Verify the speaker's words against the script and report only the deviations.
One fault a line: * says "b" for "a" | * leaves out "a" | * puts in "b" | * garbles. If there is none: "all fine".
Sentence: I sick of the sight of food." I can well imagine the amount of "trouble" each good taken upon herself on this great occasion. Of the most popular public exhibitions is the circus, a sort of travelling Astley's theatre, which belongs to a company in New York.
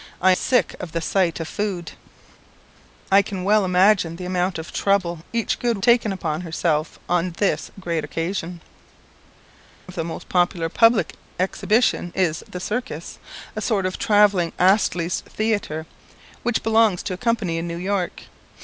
all fine